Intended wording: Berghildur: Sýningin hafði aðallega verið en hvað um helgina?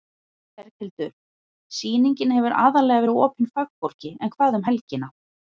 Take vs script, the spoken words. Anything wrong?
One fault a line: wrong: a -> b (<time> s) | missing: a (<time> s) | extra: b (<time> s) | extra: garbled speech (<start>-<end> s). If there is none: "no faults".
wrong: hafði -> hefur (2.4 s)
extra: opin fagfólki (3.2 s)